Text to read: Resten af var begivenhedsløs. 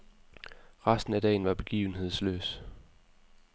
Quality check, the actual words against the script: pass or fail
fail